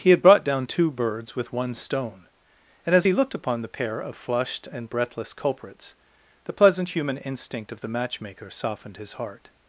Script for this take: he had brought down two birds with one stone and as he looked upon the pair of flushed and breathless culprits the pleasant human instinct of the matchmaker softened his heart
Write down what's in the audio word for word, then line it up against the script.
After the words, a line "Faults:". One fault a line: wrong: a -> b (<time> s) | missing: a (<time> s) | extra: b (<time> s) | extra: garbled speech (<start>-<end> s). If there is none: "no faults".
he had brought down two birds with one stone and as he looked upon the pair of flushed and breathless culprits the pleasant human instinct of the matchmaker softened his heart
Faults:
no faults